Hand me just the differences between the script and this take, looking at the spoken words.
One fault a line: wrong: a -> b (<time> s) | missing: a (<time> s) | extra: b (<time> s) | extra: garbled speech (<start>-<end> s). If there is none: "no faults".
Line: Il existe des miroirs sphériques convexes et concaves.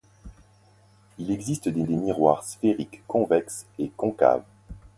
extra: des (1.8 s)